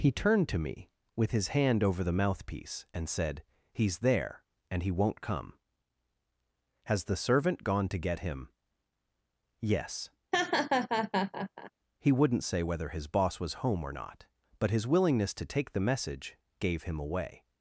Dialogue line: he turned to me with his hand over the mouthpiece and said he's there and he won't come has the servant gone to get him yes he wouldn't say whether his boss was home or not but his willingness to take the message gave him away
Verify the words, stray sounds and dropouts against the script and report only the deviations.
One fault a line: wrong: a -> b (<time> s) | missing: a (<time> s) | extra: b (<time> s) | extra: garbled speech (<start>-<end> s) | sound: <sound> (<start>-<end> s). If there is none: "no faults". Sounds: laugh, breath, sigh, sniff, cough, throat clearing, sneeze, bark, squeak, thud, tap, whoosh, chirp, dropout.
sound: laugh (10.3-11.7 s)